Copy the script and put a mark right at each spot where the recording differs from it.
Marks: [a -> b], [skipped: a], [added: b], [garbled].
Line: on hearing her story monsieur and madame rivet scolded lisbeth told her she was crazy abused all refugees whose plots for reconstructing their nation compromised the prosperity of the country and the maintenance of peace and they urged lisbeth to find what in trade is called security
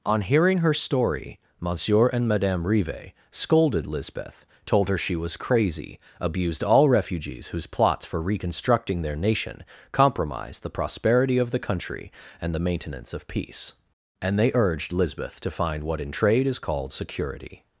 on hearing her story monsieur and madame rivet scolded lisbeth told her she was crazy abused all refugees whose plots for reconstructing their nation compromised the prosperity of the country and the maintenance of peace and they urged lisbeth to find what in trade is called security